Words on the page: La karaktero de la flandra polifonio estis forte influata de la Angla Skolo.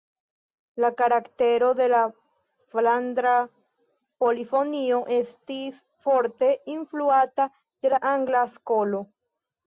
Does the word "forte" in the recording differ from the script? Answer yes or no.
no